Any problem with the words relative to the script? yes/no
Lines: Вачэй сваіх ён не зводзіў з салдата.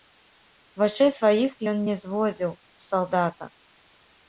no